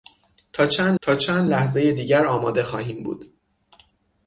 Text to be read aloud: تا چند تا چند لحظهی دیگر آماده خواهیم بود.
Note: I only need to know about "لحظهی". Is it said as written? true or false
true